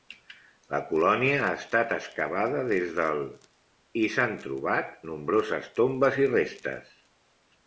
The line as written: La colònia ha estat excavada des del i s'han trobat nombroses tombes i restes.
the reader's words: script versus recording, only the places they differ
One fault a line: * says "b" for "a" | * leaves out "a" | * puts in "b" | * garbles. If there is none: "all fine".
all fine